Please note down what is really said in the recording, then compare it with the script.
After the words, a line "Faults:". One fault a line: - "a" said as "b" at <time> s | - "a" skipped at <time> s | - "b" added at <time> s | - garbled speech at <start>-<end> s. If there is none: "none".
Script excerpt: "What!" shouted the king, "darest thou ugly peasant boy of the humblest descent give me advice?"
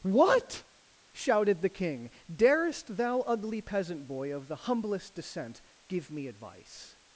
"What!" shouted the king, "darest thou ugly peasant boy of the humblest descent give me advice?"
Faults:
none